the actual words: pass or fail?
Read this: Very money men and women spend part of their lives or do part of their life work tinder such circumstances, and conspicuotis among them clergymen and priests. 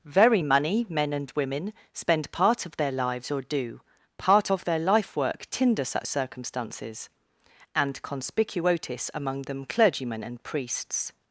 pass